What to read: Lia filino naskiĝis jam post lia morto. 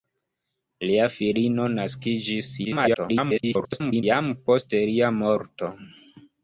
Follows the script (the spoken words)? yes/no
no